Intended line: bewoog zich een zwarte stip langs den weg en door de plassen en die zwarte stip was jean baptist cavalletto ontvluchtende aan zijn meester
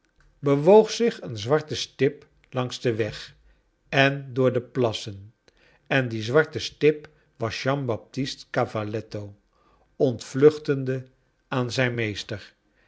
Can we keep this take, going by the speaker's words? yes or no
yes